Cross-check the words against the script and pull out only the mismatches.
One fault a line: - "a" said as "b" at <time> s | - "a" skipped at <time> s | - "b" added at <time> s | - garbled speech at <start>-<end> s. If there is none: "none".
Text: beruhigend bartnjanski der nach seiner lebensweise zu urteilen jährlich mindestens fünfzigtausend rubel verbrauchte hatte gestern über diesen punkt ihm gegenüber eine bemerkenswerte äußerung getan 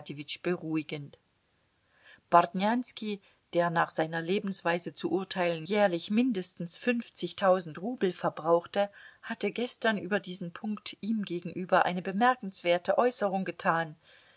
none